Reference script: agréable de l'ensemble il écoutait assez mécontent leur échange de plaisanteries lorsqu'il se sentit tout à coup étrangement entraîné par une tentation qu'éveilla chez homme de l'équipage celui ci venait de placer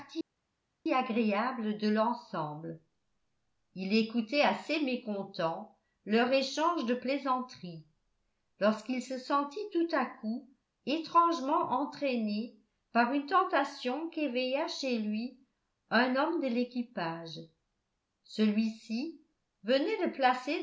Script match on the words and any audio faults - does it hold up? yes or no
no